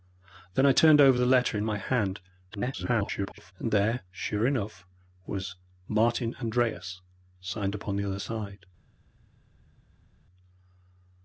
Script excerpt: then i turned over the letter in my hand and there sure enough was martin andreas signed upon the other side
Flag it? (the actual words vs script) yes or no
yes